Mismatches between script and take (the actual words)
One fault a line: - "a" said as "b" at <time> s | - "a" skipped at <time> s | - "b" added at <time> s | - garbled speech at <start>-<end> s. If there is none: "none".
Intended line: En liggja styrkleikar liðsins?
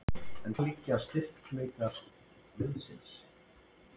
none